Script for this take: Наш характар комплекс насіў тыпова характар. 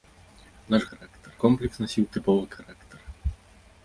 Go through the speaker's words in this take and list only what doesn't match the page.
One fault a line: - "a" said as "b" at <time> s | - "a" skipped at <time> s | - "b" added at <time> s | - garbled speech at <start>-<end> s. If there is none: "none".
none